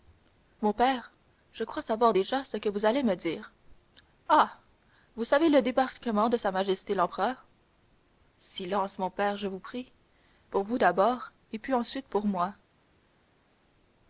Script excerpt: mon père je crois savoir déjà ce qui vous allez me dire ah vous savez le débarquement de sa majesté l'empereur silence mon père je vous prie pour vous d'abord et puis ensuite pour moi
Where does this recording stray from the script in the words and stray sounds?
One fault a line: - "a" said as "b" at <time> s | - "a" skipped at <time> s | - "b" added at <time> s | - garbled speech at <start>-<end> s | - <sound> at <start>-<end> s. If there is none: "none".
- "qui" said as "que" at 2.5 s